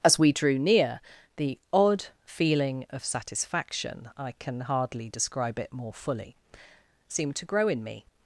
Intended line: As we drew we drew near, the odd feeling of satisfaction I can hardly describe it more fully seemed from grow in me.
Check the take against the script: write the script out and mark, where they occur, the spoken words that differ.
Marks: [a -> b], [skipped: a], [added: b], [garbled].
As we drew [skipped: we drew] near, the odd feeling of satisfaction I can hardly describe it more fully seemed [from -> to] grow in me.